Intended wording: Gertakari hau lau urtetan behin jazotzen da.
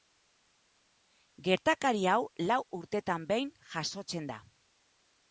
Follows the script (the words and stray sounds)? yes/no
yes